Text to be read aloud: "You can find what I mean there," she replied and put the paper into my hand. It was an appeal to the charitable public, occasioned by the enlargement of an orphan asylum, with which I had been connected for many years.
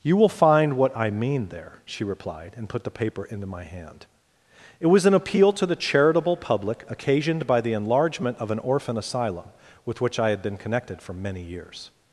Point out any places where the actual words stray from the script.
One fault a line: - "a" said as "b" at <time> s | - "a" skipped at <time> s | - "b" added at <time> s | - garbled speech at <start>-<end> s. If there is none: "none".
- "can" said as "will" at 0.2 s